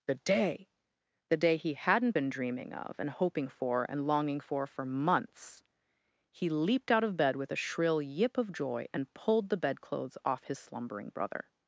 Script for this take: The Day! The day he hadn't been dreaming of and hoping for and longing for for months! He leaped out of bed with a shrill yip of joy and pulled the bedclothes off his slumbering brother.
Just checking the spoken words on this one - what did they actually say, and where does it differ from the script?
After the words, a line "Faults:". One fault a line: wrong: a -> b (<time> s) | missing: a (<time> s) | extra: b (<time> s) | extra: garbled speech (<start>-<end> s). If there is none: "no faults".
The Day! The day he hadn't been dreaming of and hoping for and longing for for months! He leaped out of bed with a shrill yip of joy and pulled the bedclothes off his slumbering brother.
Faults:
no faults